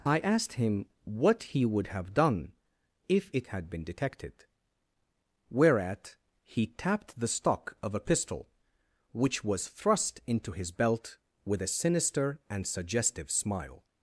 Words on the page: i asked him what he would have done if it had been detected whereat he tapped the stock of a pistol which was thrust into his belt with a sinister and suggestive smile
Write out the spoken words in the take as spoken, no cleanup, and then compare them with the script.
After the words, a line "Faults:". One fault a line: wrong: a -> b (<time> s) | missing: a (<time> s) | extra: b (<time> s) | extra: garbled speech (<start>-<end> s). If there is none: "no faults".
i asked him what he would have done if it had been detected whereat he tapped the stock of a pistol which was thrust into his belt with a sinister and suggestive smile
Faults:
no faults